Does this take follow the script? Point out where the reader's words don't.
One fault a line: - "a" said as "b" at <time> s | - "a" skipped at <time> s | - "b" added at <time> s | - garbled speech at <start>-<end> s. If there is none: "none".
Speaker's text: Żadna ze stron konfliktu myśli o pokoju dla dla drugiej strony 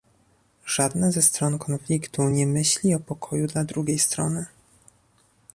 - "nie" added at 2.3 s
- "dla" skipped at 3.6 s